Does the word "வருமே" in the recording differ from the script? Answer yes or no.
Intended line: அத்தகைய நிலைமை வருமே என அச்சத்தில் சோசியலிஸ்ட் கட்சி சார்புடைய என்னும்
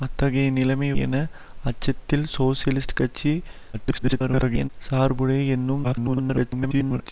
yes